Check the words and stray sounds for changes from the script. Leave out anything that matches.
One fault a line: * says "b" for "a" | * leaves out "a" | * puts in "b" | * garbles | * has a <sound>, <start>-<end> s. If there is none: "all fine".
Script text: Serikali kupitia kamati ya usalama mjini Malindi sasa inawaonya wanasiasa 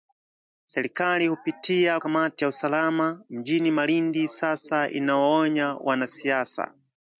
all fine